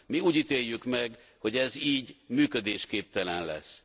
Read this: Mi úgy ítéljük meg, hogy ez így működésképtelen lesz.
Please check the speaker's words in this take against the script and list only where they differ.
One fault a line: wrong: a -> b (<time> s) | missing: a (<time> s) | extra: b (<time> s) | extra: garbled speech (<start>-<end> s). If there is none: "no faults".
no faults